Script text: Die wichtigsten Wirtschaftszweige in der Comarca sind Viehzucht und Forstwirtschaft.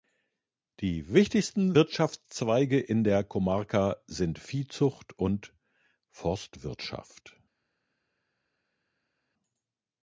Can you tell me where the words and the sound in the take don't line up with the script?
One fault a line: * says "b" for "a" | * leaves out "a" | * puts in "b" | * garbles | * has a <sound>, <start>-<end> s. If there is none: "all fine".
all fine